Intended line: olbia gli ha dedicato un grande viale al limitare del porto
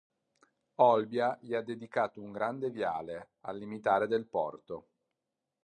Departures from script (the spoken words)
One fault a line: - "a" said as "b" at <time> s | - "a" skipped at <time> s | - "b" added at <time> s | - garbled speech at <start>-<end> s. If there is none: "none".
none